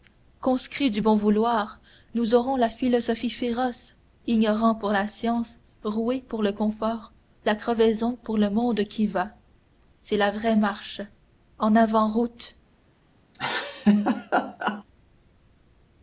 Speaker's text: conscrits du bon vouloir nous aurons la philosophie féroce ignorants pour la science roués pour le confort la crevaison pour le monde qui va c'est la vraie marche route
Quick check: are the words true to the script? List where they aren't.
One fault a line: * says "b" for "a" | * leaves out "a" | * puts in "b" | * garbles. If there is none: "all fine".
* puts in "en avant"